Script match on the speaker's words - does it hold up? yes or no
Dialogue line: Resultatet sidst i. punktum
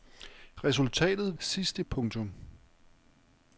yes